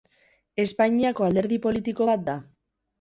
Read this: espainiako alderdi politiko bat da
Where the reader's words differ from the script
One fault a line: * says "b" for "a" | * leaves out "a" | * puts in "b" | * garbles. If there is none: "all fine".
all fine